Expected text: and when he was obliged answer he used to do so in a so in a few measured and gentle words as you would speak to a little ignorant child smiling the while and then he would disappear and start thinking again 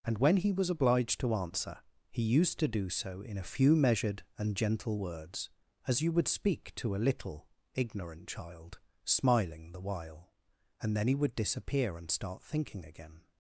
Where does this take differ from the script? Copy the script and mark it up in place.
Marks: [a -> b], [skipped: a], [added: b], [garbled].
and when he was obliged [added: to] answer he used to do so in a [skipped: so in a] few measured and gentle words as you would speak to a little ignorant child smiling the while and then he would disappear and start thinking again